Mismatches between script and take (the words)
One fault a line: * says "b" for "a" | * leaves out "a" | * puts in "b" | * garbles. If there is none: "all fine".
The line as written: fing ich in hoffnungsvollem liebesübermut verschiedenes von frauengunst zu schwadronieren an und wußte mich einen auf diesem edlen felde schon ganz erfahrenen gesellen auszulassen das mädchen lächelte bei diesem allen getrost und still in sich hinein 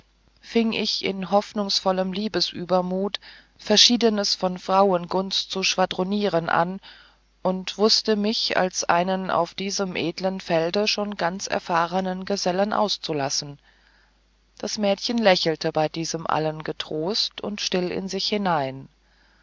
* puts in "als"